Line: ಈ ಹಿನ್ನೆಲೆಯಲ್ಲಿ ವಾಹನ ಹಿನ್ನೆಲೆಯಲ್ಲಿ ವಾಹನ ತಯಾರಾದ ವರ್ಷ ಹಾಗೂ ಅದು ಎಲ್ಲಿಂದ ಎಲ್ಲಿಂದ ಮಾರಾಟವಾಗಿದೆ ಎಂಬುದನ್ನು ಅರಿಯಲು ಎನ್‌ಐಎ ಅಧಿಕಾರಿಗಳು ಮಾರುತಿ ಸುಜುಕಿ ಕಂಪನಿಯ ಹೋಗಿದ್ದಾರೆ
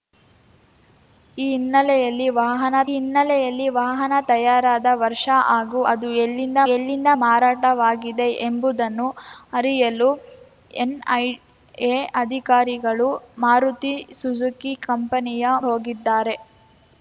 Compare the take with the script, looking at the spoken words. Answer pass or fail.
pass